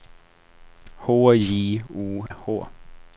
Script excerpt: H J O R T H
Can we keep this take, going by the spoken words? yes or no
no